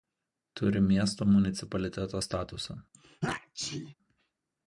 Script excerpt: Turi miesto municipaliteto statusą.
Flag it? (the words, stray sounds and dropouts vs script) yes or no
yes